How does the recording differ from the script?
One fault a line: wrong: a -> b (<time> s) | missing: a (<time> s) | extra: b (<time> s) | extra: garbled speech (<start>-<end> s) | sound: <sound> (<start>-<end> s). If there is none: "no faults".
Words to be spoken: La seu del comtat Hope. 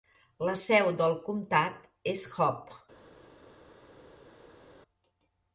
extra: és (2.2 s)